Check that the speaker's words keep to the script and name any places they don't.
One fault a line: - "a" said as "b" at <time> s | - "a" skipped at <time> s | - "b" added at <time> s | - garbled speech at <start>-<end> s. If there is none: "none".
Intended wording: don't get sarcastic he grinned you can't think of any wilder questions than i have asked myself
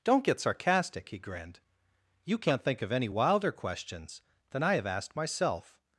none